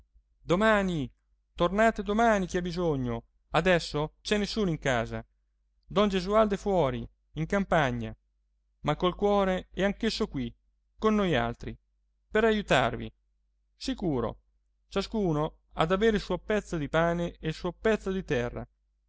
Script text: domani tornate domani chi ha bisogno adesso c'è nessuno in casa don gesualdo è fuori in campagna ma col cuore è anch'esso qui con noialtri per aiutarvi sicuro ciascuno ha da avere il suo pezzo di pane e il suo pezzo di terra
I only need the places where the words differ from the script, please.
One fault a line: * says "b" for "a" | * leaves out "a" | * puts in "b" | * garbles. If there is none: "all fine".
all fine